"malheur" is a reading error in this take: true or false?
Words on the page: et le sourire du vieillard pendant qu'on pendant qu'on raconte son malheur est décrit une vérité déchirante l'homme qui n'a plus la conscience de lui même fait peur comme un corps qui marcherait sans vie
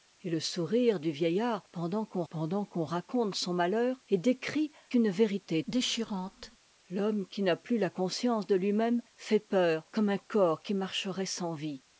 false